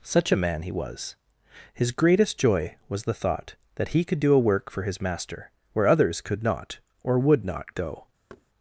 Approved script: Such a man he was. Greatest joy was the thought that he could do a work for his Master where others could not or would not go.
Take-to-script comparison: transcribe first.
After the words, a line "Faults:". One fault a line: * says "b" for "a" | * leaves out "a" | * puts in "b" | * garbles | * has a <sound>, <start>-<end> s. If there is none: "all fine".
Such a man he was. His greatest joy was the thought that he could do a work for his Master where others could not or would not go.
Faults:
* puts in "His"
* has a thud, 8.3-8.5 s